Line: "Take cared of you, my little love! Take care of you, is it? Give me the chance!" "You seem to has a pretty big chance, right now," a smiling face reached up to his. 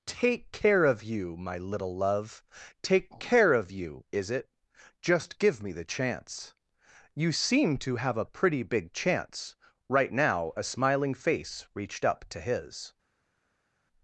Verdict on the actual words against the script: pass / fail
fail